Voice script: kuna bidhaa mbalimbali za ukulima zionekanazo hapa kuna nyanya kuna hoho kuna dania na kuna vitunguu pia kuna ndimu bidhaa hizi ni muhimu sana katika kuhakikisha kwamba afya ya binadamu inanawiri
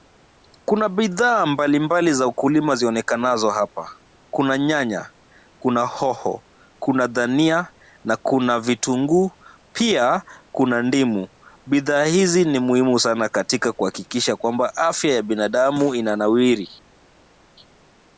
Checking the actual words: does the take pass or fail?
pass